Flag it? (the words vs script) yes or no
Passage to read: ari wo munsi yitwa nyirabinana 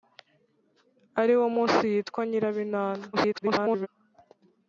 yes